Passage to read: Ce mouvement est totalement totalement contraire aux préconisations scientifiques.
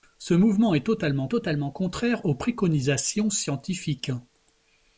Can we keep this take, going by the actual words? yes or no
yes